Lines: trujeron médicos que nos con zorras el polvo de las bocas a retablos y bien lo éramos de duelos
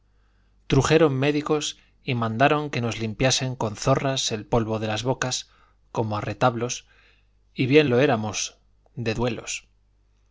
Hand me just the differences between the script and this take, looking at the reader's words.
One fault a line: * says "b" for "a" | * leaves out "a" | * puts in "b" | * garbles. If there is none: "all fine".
* puts in "y mandaron"
* puts in "limpiasen"
* puts in "como"